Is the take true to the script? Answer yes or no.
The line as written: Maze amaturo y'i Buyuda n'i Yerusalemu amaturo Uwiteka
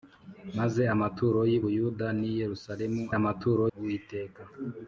yes